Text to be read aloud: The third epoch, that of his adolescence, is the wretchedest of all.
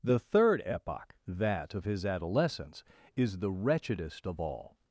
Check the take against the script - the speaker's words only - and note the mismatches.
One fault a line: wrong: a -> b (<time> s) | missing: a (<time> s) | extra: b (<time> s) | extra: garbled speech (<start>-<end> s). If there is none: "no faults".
no faults